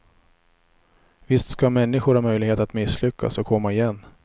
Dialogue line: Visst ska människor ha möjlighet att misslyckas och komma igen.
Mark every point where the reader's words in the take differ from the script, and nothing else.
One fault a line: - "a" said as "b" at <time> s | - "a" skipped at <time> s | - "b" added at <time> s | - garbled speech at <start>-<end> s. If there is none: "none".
none